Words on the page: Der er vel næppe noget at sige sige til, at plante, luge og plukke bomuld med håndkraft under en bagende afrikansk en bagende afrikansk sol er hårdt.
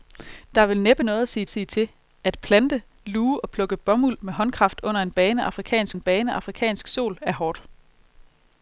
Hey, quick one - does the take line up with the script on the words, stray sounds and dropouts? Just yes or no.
yes